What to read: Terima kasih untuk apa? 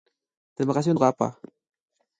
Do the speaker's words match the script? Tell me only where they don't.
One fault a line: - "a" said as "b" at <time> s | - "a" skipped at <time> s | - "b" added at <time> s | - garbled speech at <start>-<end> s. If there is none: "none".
none